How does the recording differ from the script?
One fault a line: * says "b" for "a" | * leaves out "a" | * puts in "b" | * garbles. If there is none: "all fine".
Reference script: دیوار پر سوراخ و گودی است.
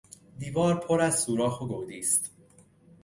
* puts in "از"